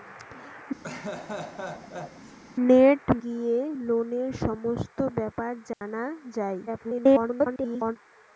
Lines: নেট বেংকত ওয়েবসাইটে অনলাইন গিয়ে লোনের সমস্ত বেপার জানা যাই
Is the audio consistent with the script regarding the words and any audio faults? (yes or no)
no